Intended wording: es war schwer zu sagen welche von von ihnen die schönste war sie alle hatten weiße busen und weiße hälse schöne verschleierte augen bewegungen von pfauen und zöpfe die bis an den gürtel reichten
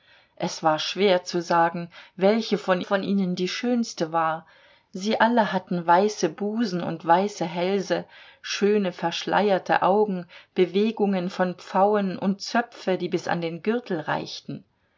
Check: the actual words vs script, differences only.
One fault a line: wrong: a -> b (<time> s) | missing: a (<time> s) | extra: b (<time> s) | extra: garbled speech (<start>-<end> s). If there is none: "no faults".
no faults